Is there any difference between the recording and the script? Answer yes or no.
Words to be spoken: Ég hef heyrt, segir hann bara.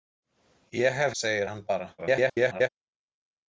yes